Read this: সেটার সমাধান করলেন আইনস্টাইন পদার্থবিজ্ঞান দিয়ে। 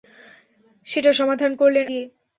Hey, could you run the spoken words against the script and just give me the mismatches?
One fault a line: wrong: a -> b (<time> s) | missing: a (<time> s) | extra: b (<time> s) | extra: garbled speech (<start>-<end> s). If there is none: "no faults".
missing: আইনস্টাইন পদার্থবিজ্ঞান (1.9 s)